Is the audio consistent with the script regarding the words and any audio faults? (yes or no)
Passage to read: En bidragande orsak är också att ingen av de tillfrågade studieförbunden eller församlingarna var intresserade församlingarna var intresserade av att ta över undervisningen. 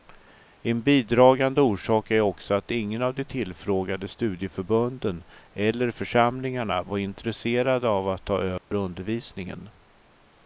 no